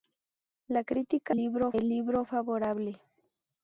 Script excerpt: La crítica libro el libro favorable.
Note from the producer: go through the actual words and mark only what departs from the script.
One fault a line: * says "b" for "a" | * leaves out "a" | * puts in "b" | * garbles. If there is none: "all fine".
all fine